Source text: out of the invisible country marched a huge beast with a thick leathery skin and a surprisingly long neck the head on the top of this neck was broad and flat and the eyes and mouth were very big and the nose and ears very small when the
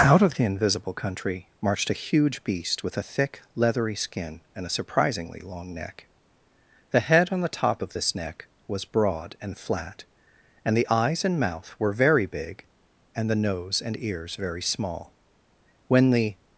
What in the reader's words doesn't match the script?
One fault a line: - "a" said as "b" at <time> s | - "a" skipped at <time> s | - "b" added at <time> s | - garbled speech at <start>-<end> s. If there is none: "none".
none